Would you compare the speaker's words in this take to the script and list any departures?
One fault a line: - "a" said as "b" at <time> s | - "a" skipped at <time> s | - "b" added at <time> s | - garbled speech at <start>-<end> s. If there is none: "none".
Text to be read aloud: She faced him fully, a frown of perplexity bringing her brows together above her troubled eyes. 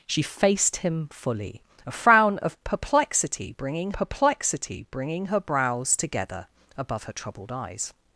- "perplexity bringing" added at 3.9 s